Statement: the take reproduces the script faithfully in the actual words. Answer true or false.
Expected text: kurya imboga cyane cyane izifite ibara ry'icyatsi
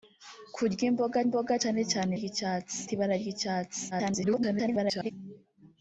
false